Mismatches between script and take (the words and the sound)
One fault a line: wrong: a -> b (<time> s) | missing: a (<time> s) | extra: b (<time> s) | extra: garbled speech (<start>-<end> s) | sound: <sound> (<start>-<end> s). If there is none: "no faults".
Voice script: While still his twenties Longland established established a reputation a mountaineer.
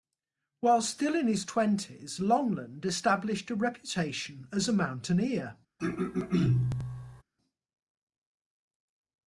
extra: in (1.1 s)
missing: established (3.5 s)
extra: as (4.5 s)
sound: throat clearing (5.8-7.2 s)